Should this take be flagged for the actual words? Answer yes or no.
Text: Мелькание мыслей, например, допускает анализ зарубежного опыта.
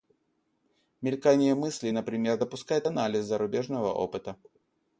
no